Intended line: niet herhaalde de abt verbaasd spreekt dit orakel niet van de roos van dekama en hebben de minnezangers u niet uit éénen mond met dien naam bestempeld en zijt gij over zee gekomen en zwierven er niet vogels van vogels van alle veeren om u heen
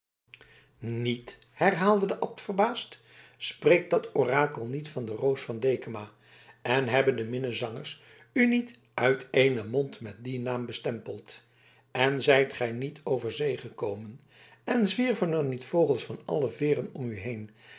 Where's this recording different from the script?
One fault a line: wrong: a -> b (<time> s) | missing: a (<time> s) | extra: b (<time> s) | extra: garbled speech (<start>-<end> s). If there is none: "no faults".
wrong: dit -> dat (3.9 s)
extra: niet (12.7 s)
missing: vogels van (16.2 s)